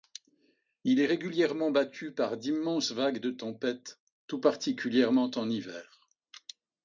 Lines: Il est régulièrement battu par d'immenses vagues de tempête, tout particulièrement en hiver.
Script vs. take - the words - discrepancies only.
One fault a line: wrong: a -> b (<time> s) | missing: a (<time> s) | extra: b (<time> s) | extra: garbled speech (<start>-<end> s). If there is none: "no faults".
no faults